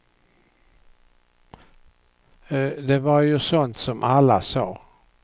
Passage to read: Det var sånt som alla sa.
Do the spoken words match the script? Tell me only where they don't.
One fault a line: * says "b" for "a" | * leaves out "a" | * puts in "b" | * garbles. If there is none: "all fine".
* puts in "ju"